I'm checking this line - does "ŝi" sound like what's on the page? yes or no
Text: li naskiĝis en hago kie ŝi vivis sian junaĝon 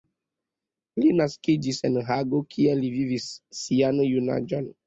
no